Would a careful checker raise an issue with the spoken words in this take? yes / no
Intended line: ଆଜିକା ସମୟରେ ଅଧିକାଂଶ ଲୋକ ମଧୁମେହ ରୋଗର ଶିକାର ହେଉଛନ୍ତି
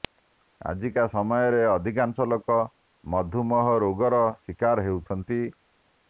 no